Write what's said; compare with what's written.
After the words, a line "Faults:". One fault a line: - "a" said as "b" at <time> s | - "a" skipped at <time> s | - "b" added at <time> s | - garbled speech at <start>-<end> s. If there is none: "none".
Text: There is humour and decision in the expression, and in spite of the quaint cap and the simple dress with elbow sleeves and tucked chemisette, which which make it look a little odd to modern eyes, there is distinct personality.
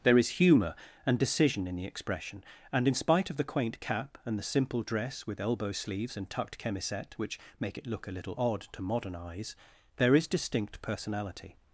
There is humour and decision in the expression, and in spite of the quaint cap and the simple dress with elbow sleeves and tucked chemisette, which make it look a little odd to modern eyes, there is distinct personality.
Faults:
- "which" skipped at 7.4 s